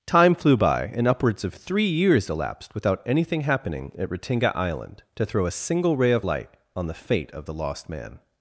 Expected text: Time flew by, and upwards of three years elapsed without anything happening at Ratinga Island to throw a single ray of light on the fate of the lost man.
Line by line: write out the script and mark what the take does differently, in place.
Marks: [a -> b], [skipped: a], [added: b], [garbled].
Time flew by, and upwards of three years elapsed without anything happening at Ratinga Island to throw a single ray of light on the fate of the lost man.